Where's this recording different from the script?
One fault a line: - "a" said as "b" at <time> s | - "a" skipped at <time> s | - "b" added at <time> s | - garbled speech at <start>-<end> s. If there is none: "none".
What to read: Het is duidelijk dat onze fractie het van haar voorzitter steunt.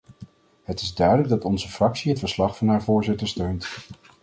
- "verslag" added at 2.2 s